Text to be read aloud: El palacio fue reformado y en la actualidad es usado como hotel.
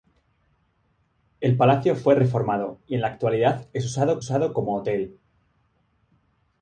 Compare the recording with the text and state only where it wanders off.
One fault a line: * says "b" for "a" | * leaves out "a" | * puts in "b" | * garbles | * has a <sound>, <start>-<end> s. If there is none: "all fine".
* puts in "usado"